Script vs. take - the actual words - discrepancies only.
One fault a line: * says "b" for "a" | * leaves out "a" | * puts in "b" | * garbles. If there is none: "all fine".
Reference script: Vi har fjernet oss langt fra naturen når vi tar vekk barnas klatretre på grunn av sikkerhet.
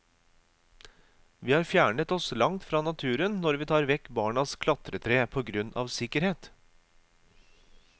all fine